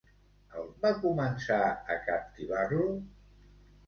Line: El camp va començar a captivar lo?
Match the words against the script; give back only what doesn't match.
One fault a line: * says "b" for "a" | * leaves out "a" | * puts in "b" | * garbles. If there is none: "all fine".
* leaves out "camp"